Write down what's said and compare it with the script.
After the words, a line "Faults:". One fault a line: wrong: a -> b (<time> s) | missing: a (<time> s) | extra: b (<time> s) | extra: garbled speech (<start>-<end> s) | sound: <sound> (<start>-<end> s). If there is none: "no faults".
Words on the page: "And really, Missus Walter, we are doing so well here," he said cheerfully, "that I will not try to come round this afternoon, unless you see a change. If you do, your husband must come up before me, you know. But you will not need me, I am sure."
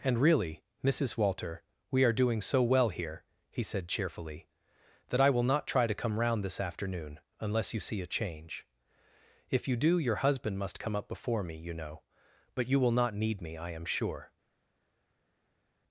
"And really, Missus Walter, we are doing so well here," he said cheerfully, "that I will not try to come round this afternoon, unless you see a change. If you do, your husband must come up before me, you know. But you will not need me, I am sure."
Faults:
no faults